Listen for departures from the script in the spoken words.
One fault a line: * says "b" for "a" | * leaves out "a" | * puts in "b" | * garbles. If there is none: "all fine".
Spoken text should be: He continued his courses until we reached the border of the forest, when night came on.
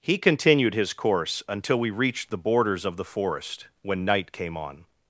* says "course" for "courses"
* says "borders" for "border"